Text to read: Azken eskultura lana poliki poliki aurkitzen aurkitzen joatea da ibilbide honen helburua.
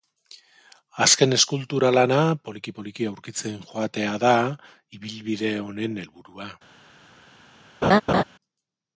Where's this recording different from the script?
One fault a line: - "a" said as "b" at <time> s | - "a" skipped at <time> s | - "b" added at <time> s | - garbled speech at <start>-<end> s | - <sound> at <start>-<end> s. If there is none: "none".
- "aurkitzen" skipped at 3.6 s
- laugh at 7.8-8.2 s